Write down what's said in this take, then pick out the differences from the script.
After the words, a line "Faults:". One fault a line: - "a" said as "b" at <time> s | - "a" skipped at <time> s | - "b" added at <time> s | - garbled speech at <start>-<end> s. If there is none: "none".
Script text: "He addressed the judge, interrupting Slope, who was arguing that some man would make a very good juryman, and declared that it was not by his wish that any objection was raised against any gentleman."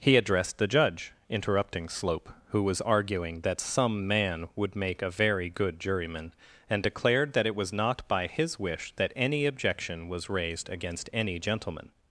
"He addressed the judge, interrupting Slope, who was arguing that some man would make a very good juryman, and declared that it was not by his wish that any objection was raised against any gentleman."
Faults:
none